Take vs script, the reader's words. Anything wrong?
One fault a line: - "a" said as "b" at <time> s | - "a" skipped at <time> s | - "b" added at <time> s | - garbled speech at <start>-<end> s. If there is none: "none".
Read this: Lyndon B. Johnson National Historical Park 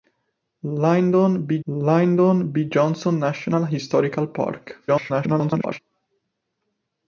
- "lyndon B" added at 1.7 s
- garbled speech at 4.9-5.8 s